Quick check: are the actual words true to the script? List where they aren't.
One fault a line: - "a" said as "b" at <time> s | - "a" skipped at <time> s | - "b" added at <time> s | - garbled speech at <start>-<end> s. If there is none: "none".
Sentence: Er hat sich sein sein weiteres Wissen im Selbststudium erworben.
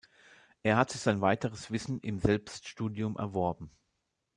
- "sein" skipped at 1.2 s